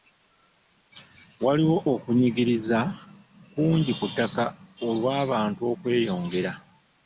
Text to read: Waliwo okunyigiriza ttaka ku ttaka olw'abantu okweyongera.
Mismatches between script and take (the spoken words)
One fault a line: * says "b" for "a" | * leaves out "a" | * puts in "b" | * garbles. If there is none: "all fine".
* says "kungi" for "ttaka"